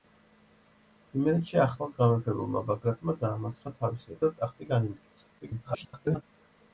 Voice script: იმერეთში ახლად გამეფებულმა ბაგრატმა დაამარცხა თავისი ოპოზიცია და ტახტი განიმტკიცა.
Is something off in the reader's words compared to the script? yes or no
yes